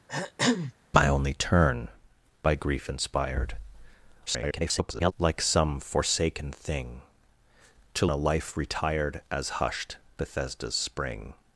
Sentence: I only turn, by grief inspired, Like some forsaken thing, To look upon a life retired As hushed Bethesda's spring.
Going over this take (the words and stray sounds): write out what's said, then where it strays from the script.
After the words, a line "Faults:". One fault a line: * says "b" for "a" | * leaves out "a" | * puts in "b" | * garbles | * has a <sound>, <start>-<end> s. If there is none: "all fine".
I only turn, by grief inspired, [garbled] Like some forsaken thing, To a life retired As hushed Bethesda's spring.
Faults:
* has a throat clearing, 0.1-0.7 s
* garbles
* leaves out "look upon"